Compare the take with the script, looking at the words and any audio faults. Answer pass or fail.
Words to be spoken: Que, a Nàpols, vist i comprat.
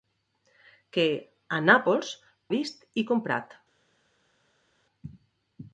pass